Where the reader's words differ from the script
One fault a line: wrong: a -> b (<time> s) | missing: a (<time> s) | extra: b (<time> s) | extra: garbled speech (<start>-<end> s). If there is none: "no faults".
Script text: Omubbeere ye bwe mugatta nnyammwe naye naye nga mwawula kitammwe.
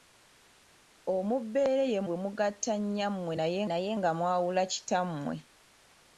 no faults